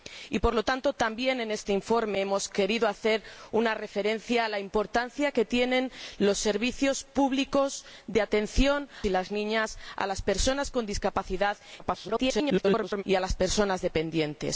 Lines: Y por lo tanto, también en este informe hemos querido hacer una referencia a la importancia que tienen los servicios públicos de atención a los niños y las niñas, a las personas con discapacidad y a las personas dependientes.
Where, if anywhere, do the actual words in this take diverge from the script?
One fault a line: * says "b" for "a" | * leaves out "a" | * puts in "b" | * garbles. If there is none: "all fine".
* leaves out "a los niños"
* garbles